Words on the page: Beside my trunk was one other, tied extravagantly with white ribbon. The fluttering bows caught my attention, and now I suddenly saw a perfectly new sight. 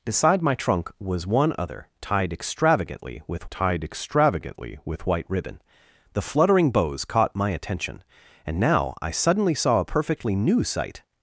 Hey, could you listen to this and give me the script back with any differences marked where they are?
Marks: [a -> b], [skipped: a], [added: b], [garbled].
Beside my trunk was one other, tied extravagantly with [added: tied extravagantly with] white ribbon. The fluttering bows caught my attention, and now I suddenly saw a perfectly new sight.